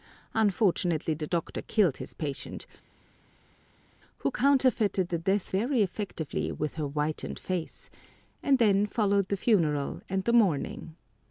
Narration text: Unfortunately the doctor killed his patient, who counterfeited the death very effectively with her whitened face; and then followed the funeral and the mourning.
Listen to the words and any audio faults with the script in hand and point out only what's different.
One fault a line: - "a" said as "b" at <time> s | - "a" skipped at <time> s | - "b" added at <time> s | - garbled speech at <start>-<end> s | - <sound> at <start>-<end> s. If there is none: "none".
none